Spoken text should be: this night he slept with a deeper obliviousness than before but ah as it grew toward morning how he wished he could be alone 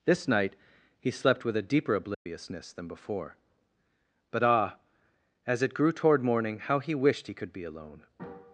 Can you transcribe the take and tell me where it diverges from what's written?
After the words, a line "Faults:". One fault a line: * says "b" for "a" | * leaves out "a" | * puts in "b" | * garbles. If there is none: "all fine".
this night he slept with a deeper obliviousness than before but ah as it grew toward morning how he wished he could be alone
Faults:
all fine